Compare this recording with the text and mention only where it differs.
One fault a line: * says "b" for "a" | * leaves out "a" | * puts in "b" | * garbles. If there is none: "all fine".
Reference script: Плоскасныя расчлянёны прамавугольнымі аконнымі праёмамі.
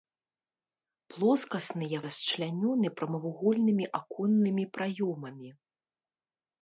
all fine